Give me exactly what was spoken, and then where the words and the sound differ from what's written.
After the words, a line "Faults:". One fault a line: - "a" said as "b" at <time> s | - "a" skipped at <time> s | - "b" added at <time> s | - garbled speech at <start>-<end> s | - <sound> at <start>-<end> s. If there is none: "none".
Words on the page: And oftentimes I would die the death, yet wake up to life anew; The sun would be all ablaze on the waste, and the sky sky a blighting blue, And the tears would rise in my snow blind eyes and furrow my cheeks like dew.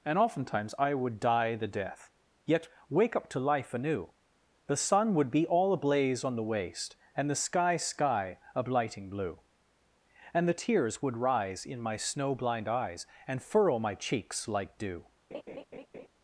And oftentimes I would die the death, yet wake up to life anew; The sun would be all ablaze on the waste, and the sky sky a blighting blue, And the tears would rise in my snow blind eyes and furrow my cheeks like dew.
Faults:
- laugh at 15.3-16.1 s